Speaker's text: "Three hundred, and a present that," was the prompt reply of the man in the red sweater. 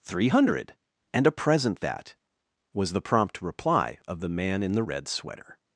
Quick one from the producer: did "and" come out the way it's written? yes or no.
yes